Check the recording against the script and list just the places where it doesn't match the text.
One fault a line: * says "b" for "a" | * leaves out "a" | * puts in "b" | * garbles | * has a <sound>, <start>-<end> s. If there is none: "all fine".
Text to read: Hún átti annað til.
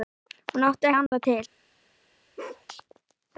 * has a dropout, 1.1-1.1 s
* has a bark, 2.4-2.7 s